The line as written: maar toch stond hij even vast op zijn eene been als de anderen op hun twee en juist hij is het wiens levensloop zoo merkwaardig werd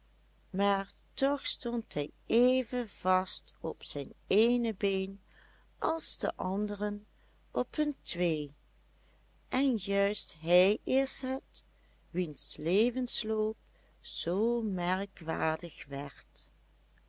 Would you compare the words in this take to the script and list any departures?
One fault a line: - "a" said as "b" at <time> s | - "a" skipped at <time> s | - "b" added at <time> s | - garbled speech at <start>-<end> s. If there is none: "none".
none